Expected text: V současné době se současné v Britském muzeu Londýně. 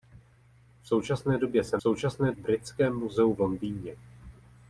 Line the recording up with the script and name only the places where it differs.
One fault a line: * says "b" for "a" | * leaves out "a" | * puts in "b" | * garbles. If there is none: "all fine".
all fine